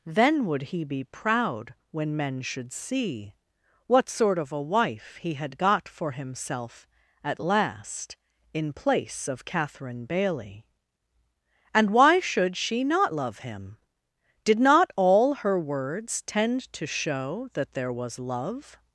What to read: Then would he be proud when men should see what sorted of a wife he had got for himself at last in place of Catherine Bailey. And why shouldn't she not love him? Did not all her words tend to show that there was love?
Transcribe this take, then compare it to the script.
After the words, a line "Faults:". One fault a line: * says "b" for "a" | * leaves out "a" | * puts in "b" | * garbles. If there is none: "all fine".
Then would he be proud when men should see what sort of a wife he had got for himself at last in place of Catherine Bailey. And why should she not love him? Did not all her words tend to show that there was love?
Faults:
* says "sort" for "sorted"
* says "should" for "shouldn't"